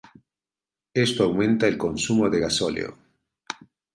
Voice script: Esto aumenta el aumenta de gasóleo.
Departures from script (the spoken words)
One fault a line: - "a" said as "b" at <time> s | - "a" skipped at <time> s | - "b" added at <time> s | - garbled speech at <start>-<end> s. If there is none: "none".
- "aumenta" said as "consumo" at 1.8 s